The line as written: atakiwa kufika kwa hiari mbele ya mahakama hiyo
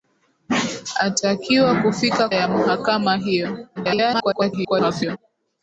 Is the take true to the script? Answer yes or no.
no